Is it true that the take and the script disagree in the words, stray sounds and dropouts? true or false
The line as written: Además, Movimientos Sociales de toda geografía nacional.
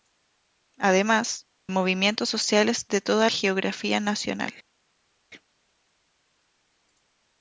false